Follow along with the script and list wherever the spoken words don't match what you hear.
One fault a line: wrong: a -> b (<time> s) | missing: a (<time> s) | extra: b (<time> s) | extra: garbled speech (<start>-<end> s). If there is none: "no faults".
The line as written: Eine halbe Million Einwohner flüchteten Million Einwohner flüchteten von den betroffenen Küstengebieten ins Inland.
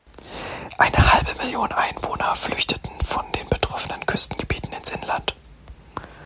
missing: Million Einwohner flüchteten (2.9 s)